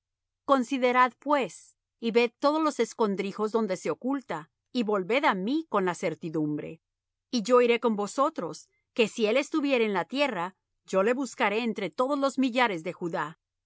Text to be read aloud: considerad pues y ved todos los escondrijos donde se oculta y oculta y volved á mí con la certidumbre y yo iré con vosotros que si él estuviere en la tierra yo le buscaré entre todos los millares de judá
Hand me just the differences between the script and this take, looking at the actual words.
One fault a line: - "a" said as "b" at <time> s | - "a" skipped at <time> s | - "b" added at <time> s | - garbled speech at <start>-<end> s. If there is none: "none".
- "oculta y" skipped at 4.8 s